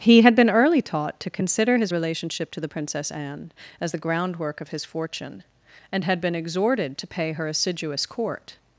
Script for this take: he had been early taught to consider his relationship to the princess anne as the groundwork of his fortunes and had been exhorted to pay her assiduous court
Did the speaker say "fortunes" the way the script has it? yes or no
no